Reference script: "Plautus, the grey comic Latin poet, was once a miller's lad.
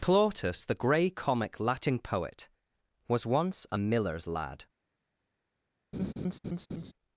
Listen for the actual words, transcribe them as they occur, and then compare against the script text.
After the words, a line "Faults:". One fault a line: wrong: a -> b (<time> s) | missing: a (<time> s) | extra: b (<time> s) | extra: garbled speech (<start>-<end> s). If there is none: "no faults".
"Plautus, the grey comic Latin poet, was once a miller's lad.
Faults:
no faults